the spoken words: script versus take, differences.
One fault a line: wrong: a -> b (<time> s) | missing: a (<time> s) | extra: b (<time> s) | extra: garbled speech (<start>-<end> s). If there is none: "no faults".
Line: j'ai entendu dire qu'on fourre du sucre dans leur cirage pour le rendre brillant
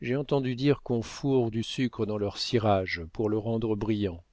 no faults